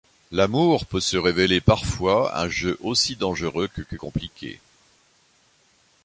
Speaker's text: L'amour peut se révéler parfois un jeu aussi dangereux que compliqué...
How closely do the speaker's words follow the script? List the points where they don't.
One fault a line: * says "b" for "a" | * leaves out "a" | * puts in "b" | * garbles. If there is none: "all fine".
* puts in "que"